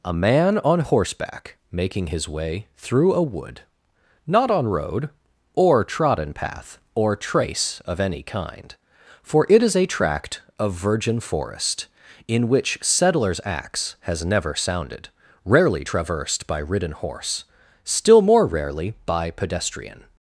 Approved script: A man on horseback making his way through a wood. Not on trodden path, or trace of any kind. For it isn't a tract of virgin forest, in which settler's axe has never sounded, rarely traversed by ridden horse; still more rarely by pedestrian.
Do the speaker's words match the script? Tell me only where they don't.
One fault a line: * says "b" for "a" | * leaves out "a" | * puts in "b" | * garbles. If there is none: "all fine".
* puts in "road or"
* says "is" for "isn't"